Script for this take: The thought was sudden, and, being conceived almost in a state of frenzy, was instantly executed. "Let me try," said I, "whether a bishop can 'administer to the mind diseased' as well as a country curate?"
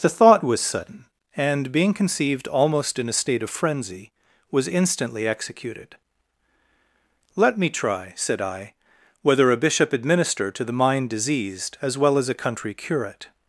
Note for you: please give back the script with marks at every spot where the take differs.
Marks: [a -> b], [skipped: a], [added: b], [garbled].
The thought was sudden, and, being conceived almost in a state of frenzy, was instantly executed. "Let me try," said I, "whether a bishop [skipped: can] 'administer to the mind diseased' as well as a country curate?"